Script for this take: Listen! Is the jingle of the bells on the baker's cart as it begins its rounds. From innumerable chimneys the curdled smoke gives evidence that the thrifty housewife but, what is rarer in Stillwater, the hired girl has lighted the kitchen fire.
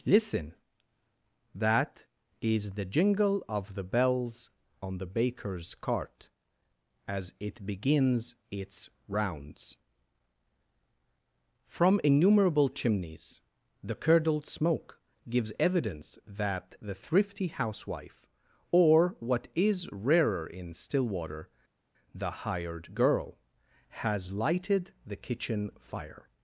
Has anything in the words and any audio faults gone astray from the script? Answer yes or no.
yes